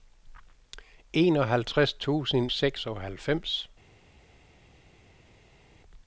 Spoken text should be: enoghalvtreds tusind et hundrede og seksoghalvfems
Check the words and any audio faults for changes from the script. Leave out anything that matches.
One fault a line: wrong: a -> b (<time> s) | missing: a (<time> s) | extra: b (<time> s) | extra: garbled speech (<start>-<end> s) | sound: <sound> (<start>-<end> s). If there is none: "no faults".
missing: et hundrede og (2.5 s)